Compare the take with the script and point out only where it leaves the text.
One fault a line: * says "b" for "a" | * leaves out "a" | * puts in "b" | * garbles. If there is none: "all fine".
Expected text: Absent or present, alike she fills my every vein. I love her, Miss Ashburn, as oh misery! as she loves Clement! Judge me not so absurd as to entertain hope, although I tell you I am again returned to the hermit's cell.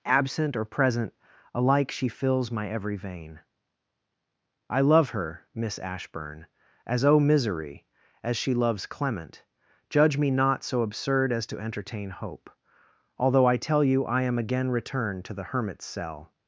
all fine